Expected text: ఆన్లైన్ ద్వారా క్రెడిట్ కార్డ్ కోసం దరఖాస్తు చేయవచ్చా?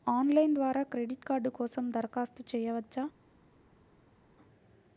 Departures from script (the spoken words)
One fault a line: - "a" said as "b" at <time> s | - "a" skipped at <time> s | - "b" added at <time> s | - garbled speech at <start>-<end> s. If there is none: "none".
none